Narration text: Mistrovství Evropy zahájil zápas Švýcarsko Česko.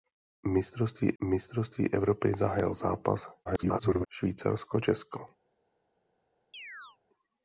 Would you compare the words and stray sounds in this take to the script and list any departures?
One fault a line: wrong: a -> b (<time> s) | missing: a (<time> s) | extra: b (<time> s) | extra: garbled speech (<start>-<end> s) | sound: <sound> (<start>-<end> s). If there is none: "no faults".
extra: mistrovství (1.2 s)
extra: garbled speech (3.5-4.1 s)
sound: chirp (6.5-7.0 s)